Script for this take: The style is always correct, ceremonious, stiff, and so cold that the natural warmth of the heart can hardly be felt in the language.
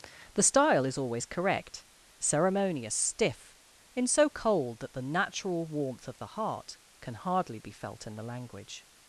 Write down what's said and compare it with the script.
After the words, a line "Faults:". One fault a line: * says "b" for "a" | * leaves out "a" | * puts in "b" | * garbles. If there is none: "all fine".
The style is always correct, ceremonious, stiff, in so cold that the natural warmth of the heart can hardly be felt in the language.
Faults:
* says "in" for "and"